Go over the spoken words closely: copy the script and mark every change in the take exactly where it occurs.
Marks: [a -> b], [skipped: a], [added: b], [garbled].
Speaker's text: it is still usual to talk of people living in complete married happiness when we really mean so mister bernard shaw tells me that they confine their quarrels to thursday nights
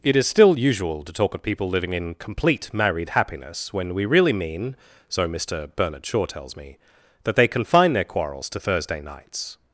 it is still usual to talk of people living in complete married happiness when we really mean so mister bernard shaw tells me that they confine their quarrels to thursday nights